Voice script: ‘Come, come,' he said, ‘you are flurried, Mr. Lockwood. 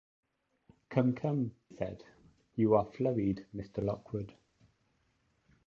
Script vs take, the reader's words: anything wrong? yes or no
yes